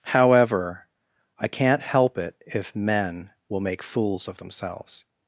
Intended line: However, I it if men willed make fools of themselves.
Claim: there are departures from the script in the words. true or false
true